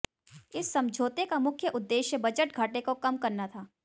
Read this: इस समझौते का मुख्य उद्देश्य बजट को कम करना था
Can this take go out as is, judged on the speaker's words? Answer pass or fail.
fail